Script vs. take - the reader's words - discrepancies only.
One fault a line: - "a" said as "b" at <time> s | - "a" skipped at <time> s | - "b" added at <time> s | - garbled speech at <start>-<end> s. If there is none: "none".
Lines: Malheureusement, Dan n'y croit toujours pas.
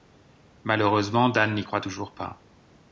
none